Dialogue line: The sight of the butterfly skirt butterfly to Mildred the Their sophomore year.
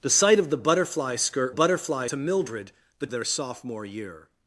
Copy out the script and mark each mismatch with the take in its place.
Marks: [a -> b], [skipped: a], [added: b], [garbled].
The sight of the butterfly skirt butterfly to Mildred the Their sophomore year.